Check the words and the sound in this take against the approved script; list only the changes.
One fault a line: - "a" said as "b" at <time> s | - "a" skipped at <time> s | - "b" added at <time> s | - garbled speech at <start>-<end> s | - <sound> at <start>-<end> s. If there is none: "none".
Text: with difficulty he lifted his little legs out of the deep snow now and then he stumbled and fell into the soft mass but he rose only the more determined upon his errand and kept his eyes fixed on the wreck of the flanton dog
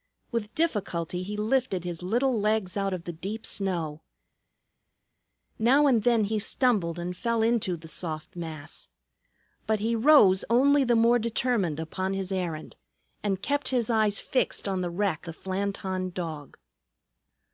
- "of" skipped at 15.3 s